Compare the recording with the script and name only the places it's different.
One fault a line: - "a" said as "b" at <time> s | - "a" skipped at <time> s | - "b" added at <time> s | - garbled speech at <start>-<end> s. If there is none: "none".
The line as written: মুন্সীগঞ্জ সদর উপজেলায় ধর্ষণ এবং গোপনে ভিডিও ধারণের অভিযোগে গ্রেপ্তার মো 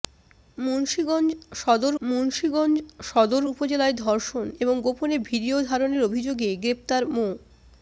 - "মুন্সীগঞ্জ সদর" added at 2.0 s